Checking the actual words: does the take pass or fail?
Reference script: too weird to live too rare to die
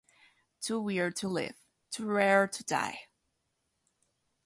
pass